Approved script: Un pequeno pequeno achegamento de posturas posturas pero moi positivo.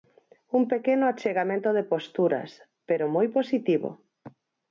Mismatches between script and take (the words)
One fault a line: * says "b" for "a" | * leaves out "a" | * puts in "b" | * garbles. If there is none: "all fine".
* leaves out "pequeno"
* leaves out "posturas"